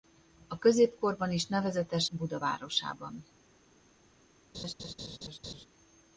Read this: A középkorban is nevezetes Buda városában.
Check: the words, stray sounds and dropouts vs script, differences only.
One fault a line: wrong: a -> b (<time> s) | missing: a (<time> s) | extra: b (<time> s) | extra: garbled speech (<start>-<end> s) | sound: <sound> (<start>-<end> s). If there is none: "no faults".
sound: laugh (4.5-5.7 s)